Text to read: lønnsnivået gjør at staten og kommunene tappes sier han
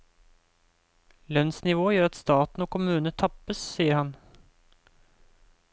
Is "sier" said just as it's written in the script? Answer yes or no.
yes